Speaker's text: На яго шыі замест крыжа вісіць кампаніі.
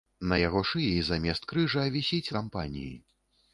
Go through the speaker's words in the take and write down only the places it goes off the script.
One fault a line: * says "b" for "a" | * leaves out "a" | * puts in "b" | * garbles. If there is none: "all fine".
all fine